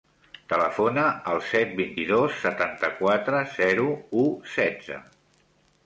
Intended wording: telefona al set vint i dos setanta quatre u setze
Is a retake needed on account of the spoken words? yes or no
yes